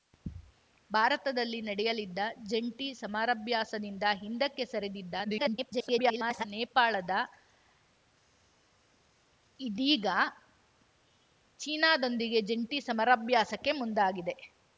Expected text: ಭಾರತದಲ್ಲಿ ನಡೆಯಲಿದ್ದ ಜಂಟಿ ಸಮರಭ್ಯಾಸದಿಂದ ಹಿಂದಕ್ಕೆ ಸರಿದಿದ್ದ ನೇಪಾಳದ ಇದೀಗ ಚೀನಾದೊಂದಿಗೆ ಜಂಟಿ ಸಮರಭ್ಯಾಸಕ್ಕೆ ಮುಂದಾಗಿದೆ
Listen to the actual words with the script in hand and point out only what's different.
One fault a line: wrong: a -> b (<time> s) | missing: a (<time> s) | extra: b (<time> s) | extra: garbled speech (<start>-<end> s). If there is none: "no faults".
extra: garbled speech (5.2-6.4 s)